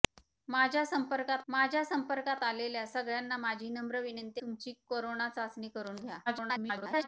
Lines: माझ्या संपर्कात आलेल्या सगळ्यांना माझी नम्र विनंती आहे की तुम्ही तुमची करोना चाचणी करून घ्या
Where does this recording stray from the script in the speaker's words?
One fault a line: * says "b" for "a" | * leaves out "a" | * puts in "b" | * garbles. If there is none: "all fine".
* puts in "माझ्या संपर्कात"
* leaves out "आहे की तुम्ही"
* garbles